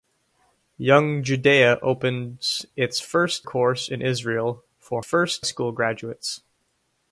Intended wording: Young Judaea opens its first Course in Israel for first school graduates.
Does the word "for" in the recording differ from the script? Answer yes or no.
no